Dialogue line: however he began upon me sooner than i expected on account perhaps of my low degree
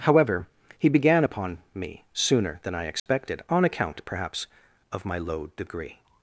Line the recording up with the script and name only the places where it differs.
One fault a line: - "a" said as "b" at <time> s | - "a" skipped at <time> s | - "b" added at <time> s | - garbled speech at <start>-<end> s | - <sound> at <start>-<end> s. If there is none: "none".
- dropout at 3.0-3.1 s